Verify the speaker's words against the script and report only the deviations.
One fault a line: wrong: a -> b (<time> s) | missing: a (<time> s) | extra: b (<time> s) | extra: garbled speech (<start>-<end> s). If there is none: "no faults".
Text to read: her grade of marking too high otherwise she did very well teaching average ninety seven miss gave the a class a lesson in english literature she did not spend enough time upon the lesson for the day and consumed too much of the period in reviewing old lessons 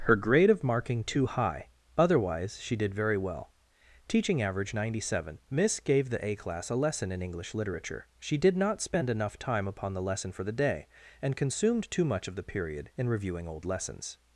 no faults